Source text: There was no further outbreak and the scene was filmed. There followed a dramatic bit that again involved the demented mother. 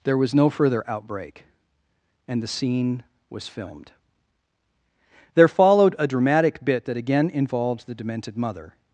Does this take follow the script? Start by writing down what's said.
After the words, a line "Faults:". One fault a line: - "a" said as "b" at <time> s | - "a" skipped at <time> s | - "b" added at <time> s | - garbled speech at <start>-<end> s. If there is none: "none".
There was no further outbreak and the scene was filmed. There followed a dramatic bit that again involved the demented mother.
Faults:
none